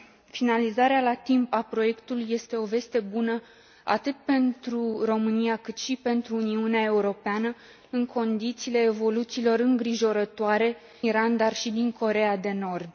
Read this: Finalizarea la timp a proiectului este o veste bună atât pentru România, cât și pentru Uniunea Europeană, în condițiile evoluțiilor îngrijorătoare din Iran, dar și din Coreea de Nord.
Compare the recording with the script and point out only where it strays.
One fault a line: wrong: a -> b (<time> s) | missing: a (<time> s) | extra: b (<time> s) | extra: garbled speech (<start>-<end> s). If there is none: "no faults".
missing: din (10.8 s)